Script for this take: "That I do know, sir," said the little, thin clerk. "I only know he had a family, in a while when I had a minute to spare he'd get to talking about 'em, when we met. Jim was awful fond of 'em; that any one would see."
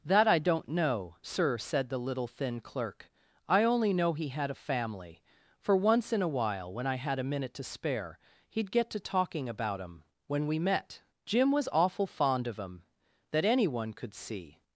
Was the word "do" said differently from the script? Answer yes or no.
yes